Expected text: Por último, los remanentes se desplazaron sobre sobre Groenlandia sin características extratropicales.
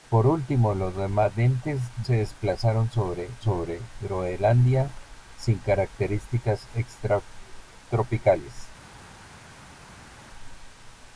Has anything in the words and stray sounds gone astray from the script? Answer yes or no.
no